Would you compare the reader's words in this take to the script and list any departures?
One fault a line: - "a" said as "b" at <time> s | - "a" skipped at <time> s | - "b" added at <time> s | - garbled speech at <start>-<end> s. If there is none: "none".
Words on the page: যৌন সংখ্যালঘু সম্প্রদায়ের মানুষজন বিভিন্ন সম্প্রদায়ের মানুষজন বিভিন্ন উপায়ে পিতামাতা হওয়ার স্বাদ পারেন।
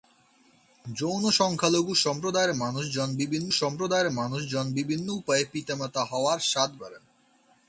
none